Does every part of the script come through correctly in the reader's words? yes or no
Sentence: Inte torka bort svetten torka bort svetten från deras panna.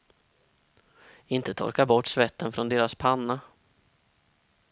no